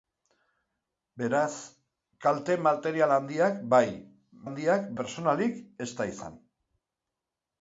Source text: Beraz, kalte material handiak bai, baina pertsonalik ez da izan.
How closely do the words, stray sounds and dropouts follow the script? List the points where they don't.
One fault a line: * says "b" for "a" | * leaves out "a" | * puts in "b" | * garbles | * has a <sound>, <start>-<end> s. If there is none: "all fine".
* says "handiak" for "baina"